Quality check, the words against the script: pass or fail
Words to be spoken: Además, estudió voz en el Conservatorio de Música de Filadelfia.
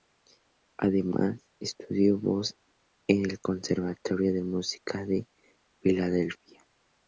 pass